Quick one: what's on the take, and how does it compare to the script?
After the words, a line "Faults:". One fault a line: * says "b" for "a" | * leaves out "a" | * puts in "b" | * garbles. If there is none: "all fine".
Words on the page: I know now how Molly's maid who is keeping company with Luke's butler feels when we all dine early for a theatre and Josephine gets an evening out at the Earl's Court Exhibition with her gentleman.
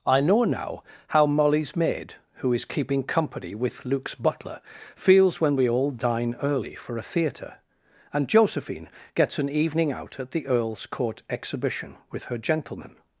I know now how Molly's maid who is keeping company with Luke's butler feels when we all dine early for a theatre and Josephine gets an evening out at the Earl's Court Exhibition with her gentleman.
Faults:
all fine